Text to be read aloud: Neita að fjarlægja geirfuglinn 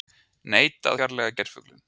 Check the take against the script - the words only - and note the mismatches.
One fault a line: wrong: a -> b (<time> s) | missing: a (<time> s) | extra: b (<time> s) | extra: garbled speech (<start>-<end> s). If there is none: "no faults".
missing: að (0.9 s)